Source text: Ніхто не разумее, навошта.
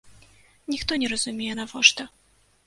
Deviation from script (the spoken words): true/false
false